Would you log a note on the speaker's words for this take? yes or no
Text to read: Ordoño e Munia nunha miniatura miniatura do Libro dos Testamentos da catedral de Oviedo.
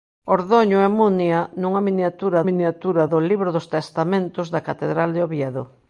no